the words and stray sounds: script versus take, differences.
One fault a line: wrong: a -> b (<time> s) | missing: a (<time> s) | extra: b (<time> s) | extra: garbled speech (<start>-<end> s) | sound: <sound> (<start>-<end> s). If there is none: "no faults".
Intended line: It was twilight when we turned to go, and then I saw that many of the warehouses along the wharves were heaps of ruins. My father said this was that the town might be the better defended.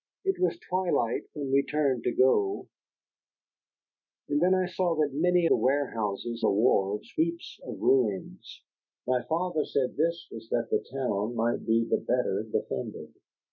missing: of (5.5 s)
missing: along (6.4 s)
missing: were (7.1 s)